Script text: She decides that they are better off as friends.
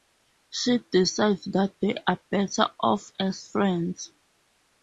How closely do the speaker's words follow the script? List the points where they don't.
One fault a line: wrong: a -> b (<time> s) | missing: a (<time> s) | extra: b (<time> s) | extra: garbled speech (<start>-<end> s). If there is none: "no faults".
no faults